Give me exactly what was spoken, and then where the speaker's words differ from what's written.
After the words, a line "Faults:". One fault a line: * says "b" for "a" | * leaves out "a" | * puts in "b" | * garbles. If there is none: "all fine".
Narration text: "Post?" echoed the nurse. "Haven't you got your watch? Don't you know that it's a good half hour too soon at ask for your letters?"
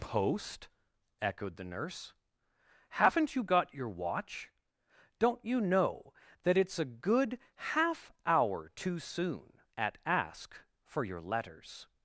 "Post?" echoed the nurse. "Haven't you got your watch? Don't you know that it's a good half hour too soon at ask for your letters?"
Faults:
all fine